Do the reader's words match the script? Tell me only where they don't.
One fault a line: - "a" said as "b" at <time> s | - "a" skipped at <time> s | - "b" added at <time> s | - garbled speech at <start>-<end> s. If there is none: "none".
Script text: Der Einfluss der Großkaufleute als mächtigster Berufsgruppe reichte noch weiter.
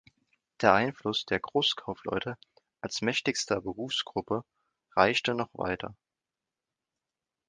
none